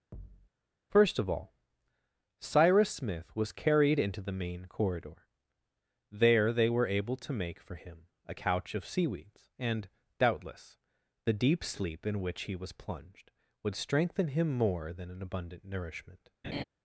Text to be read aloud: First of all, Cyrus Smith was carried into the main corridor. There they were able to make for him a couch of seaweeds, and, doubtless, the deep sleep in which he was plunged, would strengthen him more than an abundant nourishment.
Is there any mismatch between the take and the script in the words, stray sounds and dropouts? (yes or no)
yes